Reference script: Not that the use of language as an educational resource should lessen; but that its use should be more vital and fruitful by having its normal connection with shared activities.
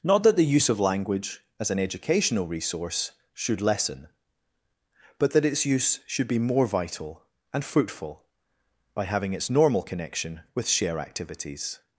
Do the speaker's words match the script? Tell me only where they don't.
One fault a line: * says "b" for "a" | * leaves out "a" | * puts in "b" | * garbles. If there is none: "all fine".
* says "share" for "shared"